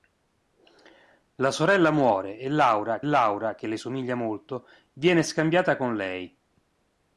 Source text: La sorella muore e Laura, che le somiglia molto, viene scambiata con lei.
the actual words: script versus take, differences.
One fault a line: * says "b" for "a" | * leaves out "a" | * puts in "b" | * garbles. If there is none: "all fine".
* puts in "Laura"